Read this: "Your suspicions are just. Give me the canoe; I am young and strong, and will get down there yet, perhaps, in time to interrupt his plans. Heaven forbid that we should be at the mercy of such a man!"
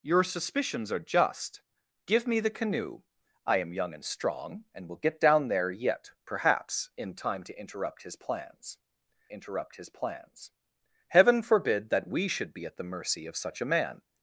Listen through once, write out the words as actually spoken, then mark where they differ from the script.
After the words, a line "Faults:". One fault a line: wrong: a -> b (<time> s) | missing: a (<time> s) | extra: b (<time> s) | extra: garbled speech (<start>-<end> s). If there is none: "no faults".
"Your suspicions are just. Give me the canoe; I am young and strong, and will get down there yet, perhaps, in time to interrupt his plans interrupt his plans. Heaven forbid that we should be at the mercy of such a man!"
Faults:
extra: interrupt his plans (9.3 s)